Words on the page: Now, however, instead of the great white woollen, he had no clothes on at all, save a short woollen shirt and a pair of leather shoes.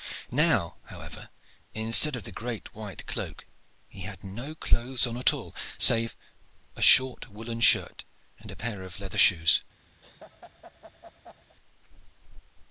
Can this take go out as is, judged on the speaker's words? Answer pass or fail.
fail